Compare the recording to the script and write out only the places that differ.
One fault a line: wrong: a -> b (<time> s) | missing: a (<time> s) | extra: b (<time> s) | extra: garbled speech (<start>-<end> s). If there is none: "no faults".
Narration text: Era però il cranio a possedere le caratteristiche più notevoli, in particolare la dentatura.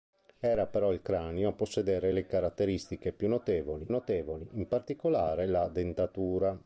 extra: notevoli (3.9 s)